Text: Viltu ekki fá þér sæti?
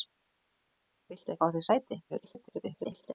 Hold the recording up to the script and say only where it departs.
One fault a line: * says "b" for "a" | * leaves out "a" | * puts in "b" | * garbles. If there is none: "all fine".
* leaves out "ekki"
* garbles